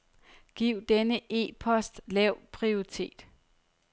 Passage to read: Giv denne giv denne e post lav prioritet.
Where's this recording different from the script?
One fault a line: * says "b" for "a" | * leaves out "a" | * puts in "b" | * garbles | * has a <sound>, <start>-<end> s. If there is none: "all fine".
* leaves out "giv denne"